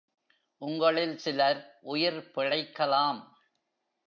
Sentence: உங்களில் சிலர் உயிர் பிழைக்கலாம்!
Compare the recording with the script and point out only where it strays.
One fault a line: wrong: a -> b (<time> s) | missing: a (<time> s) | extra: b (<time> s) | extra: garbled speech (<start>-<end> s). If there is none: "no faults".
no faults